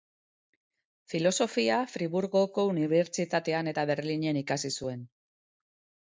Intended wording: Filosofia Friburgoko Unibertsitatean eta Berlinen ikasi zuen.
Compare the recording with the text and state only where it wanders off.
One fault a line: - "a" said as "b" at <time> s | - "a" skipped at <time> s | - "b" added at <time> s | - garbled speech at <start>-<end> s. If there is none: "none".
none